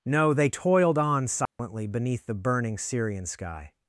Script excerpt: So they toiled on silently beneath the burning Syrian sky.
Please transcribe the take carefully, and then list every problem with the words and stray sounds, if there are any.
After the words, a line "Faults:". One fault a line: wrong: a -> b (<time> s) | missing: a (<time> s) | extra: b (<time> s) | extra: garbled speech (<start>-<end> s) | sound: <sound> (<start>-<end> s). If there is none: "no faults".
No they toiled on silently beneath the burning Syrian sky.
Faults:
wrong: So -> No (0.1 s)
sound: dropout (1.5-1.6 s)